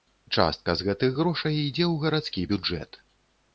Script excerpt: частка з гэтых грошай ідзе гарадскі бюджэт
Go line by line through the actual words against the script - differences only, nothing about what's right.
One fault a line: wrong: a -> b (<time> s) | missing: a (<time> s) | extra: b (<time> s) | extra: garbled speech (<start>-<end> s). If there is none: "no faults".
extra: ў (1.9 s)